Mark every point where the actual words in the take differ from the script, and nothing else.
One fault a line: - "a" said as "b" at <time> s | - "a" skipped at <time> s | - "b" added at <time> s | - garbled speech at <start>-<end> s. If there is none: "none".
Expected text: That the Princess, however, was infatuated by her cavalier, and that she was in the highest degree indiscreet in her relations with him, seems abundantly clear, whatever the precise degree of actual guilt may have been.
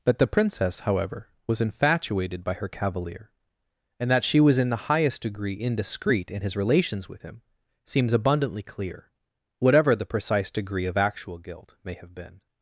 - "her" said as "his" at 6.4 s